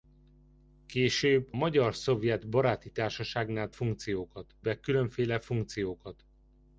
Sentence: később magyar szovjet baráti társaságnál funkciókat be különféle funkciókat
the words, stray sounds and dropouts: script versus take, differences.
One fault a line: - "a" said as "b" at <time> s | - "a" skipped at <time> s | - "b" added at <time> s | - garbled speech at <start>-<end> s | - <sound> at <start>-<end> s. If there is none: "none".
none